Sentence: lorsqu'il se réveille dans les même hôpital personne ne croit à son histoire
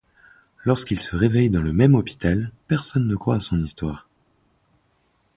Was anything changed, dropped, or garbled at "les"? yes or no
yes